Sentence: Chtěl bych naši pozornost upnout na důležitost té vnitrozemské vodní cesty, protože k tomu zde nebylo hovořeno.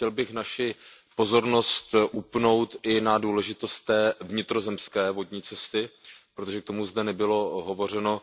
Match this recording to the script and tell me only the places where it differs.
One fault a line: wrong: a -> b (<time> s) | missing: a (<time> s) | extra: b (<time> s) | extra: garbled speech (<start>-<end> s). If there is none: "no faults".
extra: i (2.8 s)